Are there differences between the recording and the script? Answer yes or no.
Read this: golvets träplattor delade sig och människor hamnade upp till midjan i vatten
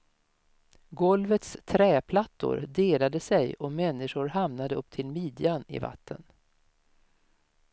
no